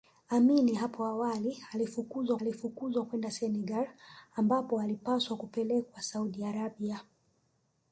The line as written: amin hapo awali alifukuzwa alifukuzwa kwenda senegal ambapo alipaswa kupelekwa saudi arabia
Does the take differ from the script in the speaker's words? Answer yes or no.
no